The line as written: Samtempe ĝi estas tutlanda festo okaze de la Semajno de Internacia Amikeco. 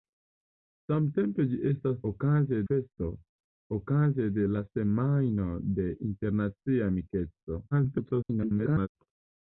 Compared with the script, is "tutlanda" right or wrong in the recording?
wrong